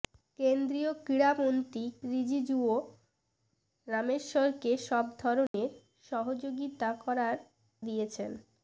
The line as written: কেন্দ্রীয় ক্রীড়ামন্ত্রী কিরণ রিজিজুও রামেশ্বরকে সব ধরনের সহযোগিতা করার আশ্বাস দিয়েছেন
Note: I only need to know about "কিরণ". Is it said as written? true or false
false